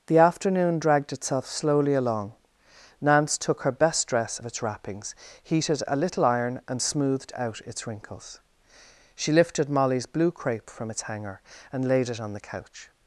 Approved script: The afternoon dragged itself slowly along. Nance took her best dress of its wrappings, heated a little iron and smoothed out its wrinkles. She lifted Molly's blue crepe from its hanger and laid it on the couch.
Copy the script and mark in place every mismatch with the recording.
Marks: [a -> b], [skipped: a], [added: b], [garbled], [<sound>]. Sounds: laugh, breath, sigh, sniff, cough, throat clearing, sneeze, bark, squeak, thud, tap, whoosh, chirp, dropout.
The afternoon dragged itself slowly along. Nance took her best dress of its wrappings, heated a little iron and smoothed out its wrinkles. She lifted Molly's blue crepe from its hanger and laid it on the couch.